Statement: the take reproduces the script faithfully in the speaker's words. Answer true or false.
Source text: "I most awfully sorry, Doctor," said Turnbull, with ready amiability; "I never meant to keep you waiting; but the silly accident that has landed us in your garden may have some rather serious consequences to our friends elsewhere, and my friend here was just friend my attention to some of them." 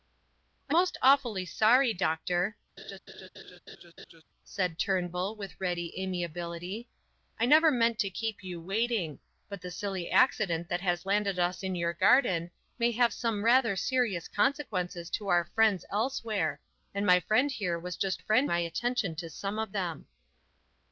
true